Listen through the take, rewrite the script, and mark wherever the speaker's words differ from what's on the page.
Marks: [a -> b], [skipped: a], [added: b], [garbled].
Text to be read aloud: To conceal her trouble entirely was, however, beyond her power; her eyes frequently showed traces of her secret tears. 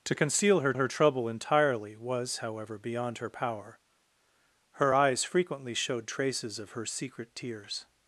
To conceal her [added: her] trouble entirely was, however, beyond her power; her eyes frequently showed traces of her secret tears.